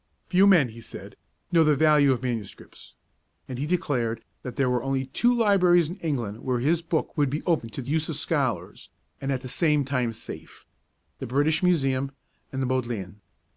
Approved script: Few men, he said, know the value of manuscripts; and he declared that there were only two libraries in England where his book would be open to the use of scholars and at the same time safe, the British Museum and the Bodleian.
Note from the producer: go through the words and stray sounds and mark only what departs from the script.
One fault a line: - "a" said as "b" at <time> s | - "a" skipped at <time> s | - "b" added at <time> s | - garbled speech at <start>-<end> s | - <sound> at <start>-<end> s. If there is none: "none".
none